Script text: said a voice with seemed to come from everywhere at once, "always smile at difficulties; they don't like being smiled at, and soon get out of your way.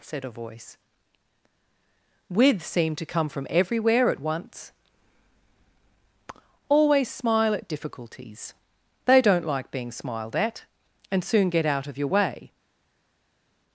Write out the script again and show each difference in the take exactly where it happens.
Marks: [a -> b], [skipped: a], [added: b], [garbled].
said a voice with seemed to come from everywhere at once, "always smile at difficulties; they don't like being smiled at, and soon get out of your way.